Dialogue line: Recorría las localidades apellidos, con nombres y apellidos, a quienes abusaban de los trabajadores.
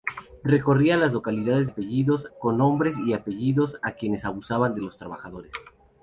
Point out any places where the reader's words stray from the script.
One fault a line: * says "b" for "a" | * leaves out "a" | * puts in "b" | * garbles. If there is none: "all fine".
all fine